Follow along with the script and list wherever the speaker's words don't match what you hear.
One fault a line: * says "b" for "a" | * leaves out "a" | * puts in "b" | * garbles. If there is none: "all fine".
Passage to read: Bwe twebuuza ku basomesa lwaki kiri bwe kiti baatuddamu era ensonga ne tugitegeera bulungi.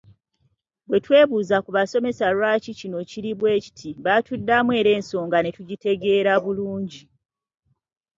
* puts in "kino"